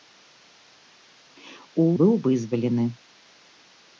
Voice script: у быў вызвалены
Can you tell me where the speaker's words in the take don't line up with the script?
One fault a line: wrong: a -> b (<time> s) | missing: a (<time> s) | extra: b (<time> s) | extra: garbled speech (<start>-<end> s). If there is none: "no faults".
no faults